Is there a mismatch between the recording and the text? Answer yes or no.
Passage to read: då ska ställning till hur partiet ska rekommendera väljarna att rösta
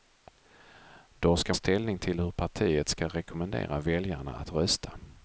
no